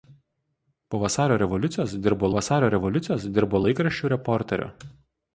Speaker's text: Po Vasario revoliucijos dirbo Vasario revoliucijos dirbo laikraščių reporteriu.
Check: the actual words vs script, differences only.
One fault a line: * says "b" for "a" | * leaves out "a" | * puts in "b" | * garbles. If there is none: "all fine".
all fine